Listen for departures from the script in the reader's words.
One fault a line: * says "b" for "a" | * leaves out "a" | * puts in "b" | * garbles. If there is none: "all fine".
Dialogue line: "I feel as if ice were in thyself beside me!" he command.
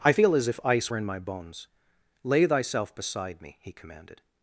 * puts in "my bones Lay"
* says "commanded" for "command"